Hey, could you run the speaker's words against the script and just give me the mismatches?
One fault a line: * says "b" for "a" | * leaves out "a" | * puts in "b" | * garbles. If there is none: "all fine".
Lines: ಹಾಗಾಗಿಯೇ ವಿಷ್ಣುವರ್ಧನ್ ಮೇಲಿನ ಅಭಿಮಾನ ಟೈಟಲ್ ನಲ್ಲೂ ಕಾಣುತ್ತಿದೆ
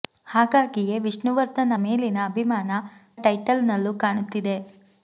all fine